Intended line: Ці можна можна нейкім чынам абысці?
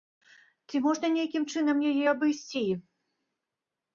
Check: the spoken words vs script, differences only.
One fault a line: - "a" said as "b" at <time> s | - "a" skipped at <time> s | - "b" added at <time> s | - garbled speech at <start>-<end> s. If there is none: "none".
- "можна" skipped at 1.1 s
- "яе" added at 1.9 s